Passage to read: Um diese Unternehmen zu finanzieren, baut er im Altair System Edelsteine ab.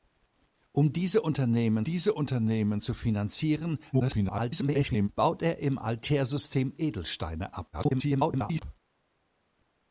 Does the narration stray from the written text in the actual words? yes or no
yes